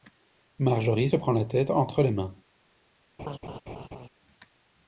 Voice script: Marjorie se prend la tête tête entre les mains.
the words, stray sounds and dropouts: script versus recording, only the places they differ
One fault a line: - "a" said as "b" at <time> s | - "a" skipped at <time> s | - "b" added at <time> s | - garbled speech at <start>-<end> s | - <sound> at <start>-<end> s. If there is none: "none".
- "tête" skipped at 1.7 s
- laugh at 3.2-4.1 s